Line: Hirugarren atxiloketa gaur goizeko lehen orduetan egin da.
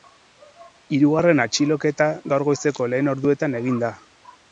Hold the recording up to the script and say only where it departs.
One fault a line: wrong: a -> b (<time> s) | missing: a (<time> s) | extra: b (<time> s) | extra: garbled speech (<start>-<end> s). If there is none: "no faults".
no faults